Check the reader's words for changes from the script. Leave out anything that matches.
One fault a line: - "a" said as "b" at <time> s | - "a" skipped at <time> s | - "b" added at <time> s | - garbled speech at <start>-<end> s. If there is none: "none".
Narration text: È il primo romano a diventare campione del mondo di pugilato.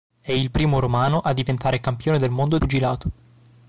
- "di" skipped at 2.6 s